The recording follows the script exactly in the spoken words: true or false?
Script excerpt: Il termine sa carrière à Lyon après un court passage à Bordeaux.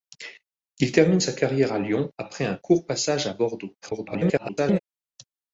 false